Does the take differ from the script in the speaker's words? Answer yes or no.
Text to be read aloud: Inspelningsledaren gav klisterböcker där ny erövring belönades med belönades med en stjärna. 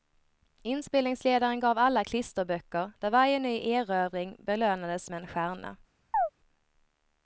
yes